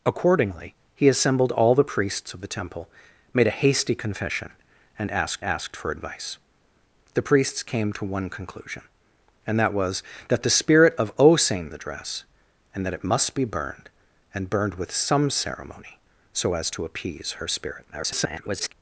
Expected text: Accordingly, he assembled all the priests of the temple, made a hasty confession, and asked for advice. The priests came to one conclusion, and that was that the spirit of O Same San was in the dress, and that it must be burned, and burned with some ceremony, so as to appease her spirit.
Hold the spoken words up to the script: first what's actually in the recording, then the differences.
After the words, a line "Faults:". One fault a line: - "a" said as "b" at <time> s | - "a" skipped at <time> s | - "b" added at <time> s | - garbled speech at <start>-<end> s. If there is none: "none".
Accordingly, he assembled all the priests of the temple, made a hasty confession, and asked asked for advice. The priests came to one conclusion, and that was that the spirit of O Same The dress, and that it must be burned, and burned with some ceremony, so as to appease her spirit. [garbled]
Faults:
- "asked" added at 5.4 s
- "San was in" skipped at 11.7 s
- garbled speech at 17.9-18.7 s